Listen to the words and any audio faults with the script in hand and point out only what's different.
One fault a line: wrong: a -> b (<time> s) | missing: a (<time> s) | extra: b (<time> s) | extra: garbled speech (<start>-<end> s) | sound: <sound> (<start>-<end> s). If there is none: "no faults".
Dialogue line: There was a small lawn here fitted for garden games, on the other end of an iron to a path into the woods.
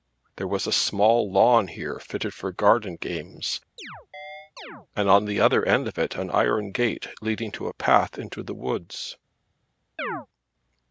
sound: chirp (3.8-4.9 s)
extra: and (5.0 s)
extra: it (6.0 s)
extra: gate leading (6.7 s)
sound: chirp (10.0-10.3 s)